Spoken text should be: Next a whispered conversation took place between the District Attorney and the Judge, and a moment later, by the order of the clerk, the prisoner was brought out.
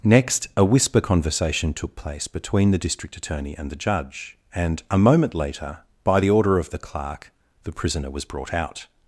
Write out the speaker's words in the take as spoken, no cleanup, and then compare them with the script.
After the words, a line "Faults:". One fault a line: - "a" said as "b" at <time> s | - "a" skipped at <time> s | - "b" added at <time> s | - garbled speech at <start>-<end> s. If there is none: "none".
Next a whisper conversation took place between the District Attorney and the Judge, and a moment later, by the order of the clerk, the prisoner was brought out.
Faults:
- "whispered" said as "whisper" at 0.6 s